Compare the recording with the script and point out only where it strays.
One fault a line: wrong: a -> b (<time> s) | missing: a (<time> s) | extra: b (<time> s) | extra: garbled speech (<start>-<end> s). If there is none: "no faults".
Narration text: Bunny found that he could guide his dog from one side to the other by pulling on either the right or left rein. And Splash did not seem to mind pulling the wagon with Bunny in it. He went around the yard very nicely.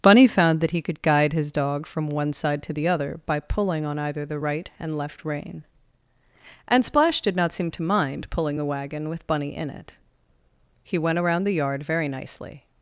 wrong: or -> and (4.8 s)